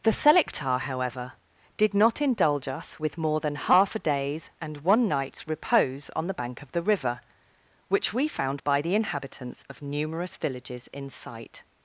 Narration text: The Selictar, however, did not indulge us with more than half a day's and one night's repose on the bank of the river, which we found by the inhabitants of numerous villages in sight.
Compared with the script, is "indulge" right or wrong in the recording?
right